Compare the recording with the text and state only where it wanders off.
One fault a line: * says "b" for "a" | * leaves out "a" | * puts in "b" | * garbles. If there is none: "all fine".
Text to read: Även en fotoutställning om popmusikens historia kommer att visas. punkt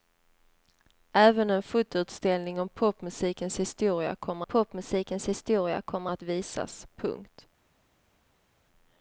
* puts in "popmusikens historia kommer"